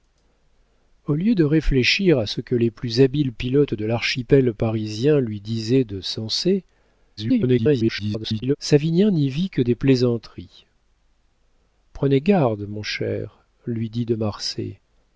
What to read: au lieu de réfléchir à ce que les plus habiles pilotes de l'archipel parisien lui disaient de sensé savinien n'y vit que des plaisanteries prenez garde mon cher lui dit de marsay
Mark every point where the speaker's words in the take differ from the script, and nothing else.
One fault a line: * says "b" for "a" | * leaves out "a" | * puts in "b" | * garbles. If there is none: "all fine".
* garbles